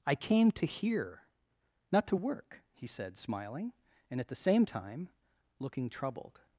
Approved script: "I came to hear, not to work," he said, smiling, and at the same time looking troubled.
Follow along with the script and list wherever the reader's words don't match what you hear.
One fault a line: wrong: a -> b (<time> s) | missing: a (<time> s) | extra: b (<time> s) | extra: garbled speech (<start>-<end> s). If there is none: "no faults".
no faults